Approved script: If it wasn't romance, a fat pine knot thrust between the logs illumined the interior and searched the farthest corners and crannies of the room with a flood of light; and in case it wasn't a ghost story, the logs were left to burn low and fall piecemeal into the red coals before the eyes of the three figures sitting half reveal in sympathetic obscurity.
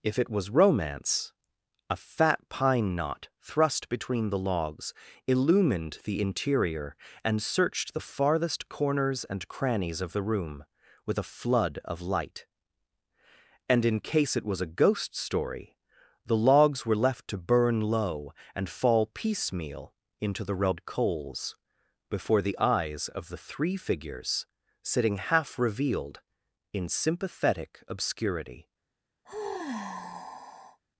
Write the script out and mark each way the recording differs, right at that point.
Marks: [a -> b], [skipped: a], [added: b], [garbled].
If it [wasn't -> was] romance, a fat pine knot thrust between the logs illumined the interior and searched the farthest corners and crannies of the room with a flood of light; and in case it [wasn't -> was] a ghost story, the logs were left to burn low and fall piecemeal into the red coals before the eyes of the three figures sitting half [reveal -> revealed] in sympathetic obscurity.